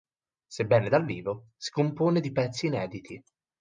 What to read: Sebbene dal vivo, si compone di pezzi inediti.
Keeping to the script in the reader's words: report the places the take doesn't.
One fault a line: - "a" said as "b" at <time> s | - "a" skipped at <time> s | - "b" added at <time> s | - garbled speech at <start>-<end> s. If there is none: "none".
none